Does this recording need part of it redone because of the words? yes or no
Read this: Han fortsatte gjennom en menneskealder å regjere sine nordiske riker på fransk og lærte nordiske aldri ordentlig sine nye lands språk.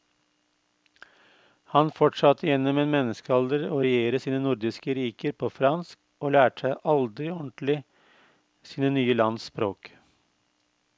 yes